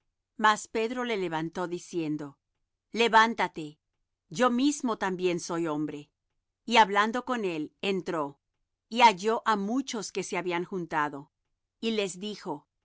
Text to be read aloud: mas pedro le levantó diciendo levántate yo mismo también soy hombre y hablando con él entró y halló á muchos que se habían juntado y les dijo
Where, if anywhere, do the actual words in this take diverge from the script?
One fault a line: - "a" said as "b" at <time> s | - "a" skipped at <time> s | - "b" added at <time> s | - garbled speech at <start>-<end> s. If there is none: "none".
none